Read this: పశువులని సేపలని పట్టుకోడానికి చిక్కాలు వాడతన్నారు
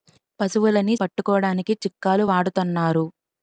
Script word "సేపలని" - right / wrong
wrong